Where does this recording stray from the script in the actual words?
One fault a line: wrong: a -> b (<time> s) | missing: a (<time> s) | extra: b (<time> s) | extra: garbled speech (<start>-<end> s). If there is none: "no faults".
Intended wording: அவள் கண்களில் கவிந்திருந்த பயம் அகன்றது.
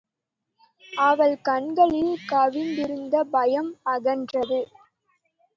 no faults